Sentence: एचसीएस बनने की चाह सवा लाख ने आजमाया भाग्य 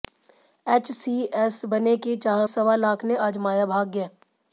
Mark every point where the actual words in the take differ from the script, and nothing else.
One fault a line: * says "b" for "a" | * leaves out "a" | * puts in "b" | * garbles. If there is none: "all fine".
all fine